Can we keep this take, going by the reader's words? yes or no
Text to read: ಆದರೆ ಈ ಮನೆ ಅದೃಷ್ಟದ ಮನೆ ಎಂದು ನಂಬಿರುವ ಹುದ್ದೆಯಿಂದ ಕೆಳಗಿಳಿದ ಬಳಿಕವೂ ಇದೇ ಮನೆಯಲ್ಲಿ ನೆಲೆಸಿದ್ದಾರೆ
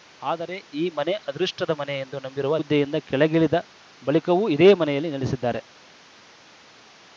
yes